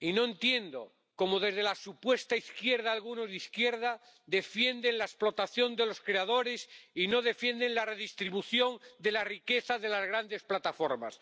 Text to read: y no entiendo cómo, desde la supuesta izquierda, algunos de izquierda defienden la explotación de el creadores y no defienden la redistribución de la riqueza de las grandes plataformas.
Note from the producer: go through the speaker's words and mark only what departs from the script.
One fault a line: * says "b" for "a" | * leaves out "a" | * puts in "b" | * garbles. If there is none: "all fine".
* says "los" for "el"